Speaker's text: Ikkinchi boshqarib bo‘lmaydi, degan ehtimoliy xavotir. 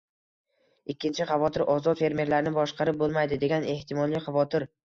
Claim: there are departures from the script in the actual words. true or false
true